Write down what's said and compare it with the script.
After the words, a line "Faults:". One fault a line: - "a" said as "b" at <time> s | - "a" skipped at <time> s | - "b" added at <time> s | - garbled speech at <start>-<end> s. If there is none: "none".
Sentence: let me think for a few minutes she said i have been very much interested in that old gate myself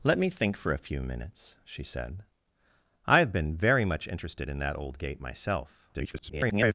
let me think for a few minutes she said i have been very much interested in that old gate myself [garbled]
Faults:
- garbled speech at 5.9-6.7 s